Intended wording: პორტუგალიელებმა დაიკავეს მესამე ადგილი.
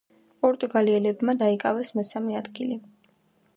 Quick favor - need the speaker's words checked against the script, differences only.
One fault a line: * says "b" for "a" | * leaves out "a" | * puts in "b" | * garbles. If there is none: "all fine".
all fine